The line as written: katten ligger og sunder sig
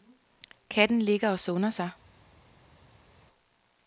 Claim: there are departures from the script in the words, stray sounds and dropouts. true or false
false